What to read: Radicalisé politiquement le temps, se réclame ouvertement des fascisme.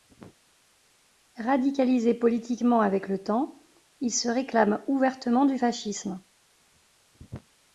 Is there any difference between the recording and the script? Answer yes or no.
yes